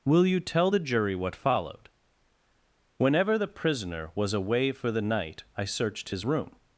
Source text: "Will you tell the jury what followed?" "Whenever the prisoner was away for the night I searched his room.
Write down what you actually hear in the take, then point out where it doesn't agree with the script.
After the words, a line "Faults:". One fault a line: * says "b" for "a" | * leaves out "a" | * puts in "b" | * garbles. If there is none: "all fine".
"Will you tell the jury what followed?" "Whenever the prisoner was away for the night I searched his room.
Faults:
all fine